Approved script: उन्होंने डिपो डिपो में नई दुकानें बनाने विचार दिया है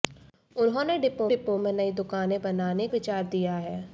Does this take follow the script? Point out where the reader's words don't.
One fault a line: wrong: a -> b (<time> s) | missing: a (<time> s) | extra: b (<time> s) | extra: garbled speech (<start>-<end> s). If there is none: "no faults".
no faults